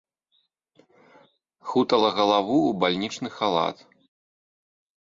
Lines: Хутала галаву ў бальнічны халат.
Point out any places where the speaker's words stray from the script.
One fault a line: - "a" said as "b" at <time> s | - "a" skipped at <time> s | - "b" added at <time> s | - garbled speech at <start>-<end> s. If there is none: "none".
none